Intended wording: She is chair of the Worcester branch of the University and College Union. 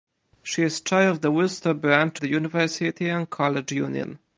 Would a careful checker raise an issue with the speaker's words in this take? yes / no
yes